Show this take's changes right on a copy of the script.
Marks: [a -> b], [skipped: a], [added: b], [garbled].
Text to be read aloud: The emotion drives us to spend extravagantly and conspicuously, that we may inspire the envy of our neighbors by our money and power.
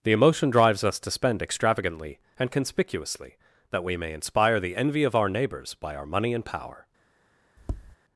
The emotion drives us to spend extravagantly and conspicuously, that we may inspire the envy of our neighbors by our money and power.